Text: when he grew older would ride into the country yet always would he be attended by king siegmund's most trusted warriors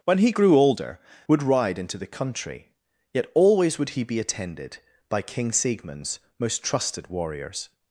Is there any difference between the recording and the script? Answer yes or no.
no